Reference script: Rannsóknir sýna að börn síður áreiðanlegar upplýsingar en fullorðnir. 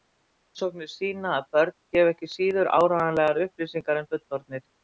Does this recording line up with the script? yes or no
no